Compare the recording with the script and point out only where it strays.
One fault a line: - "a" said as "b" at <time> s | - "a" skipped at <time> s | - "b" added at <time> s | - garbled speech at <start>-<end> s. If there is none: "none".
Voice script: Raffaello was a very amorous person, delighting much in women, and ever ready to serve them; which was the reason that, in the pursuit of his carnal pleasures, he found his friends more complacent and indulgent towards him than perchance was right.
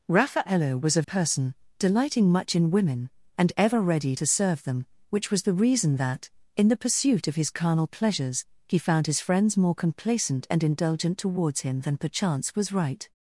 - "very amorous" skipped at 1.0 s